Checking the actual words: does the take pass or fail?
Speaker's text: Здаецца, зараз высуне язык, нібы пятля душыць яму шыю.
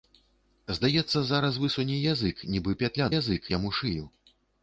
fail